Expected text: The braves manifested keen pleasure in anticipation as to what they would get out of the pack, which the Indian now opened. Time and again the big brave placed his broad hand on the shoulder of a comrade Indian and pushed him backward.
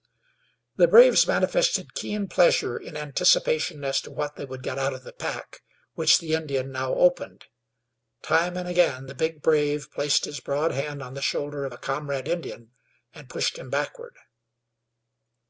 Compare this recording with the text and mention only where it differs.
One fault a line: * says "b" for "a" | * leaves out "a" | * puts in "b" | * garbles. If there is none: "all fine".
all fine